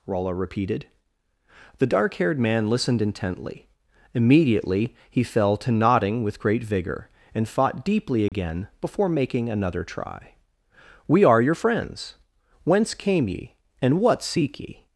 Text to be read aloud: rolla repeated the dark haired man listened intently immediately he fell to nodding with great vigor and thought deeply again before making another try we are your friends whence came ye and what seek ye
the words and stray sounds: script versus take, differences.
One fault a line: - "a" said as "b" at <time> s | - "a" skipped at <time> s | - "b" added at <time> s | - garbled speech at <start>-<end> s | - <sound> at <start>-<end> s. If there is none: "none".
- "thought" said as "fought" at 7.5 s
- dropout at 8.3-8.3 s